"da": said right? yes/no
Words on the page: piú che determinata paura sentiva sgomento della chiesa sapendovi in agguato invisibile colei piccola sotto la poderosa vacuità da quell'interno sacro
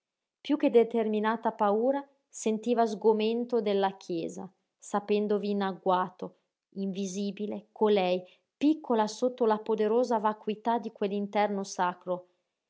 no